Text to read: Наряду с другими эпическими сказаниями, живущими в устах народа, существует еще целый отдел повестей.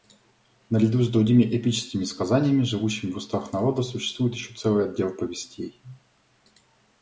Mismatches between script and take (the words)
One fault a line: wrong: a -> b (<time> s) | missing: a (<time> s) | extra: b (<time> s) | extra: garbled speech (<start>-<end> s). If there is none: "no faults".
no faults